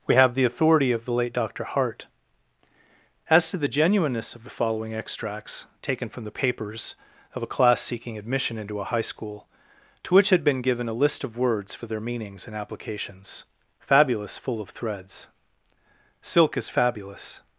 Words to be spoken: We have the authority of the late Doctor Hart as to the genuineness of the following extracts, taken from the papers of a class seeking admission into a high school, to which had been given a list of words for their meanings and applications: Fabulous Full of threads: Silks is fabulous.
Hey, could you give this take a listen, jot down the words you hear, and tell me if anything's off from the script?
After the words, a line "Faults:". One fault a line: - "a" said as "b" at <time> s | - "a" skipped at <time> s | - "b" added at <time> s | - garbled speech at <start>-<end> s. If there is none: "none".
We have the authority of the late Doctor Hart as to the genuineness of the following extracts, taken from the papers of a class seeking admission into a high school, to which had been given a list of words for their meanings and applications: Fabulous Full of threads: Silk is fabulous.
Faults:
- "Silks" said as "Silk" at 16.2 s